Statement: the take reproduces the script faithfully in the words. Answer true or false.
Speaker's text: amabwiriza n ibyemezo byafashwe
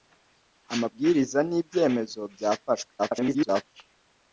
false